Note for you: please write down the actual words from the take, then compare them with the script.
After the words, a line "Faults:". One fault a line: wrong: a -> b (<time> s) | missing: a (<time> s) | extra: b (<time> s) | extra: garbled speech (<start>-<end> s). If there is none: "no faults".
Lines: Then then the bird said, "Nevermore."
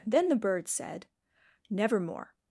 Then the bird said, "Nevermore."
Faults:
missing: then (0.3 s)